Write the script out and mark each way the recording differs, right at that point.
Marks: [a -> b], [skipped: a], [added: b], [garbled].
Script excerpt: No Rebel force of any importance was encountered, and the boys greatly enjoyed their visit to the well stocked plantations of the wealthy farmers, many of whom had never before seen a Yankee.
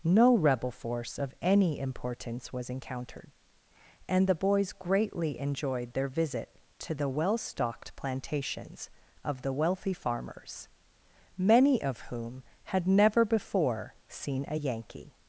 No Rebel force of any importance was encountered, and the boys greatly enjoyed their visit to the well stocked plantations of the wealthy farmers, many of whom had never before seen a Yankee.